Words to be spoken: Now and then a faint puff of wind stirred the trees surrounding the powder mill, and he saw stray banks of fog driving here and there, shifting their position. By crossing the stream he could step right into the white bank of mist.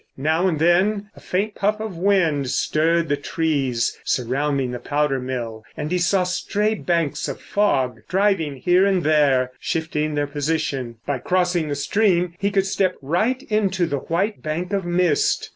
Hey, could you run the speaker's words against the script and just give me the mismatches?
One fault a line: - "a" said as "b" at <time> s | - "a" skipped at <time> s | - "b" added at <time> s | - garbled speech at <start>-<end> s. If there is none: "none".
none